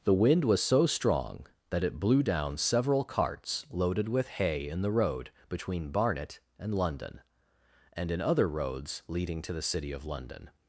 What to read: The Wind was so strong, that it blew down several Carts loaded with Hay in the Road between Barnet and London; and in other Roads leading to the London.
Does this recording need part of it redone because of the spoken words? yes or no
yes